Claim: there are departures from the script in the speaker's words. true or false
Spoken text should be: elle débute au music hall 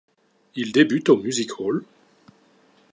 true